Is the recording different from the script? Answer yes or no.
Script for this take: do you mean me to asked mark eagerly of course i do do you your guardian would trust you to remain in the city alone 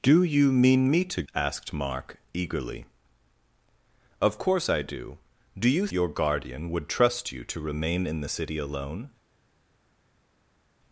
no